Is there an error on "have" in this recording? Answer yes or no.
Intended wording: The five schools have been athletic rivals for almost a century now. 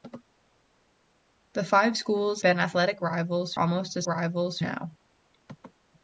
yes